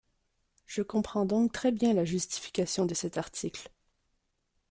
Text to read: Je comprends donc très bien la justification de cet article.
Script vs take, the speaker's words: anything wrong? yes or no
no